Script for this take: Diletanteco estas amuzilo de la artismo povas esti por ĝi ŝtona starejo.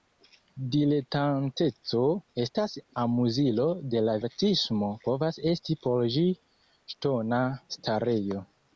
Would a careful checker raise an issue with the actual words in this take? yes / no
no